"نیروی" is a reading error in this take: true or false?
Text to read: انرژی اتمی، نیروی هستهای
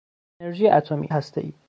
true